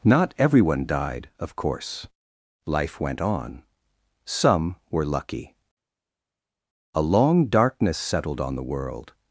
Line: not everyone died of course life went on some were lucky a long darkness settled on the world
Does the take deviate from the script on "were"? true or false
false